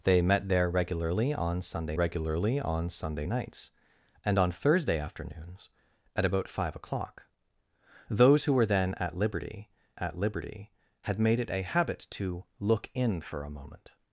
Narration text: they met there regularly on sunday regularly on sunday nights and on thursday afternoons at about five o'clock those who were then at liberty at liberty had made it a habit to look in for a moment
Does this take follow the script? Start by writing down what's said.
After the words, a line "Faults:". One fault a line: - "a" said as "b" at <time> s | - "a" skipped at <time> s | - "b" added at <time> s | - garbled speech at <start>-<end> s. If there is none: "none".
they met there regularly on sunday regularly on sunday nights and on thursday afternoons at about five o'clock those who were then at liberty at liberty had made it a habit to look in for a moment
Faults:
none